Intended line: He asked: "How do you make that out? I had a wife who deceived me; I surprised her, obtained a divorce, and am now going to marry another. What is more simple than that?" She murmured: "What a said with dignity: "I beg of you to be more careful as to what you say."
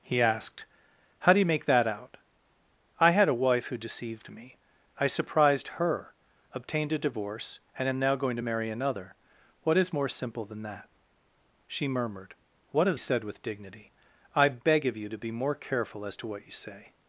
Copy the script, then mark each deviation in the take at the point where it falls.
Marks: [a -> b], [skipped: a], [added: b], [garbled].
He asked: "How do you make that out? I had a wife who deceived me; I surprised her, obtained a divorce, and am now going to marry another. What is more simple than that?" She murmured: "What a said with dignity: "I beg of you to be more careful as to what you say."